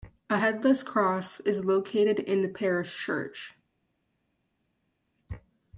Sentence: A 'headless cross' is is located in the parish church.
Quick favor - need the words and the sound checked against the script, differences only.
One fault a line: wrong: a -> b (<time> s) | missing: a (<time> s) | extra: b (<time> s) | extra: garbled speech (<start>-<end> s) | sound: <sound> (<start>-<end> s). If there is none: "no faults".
missing: is (1.7 s)